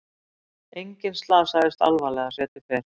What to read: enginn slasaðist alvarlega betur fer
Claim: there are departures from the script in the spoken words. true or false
false